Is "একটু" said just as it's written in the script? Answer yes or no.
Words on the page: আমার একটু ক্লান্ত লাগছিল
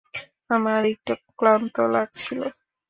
yes